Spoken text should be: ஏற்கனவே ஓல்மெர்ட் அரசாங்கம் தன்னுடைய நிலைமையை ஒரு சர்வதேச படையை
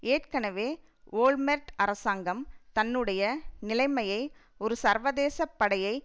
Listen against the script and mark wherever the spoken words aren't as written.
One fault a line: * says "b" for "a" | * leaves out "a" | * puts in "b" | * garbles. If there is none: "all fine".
all fine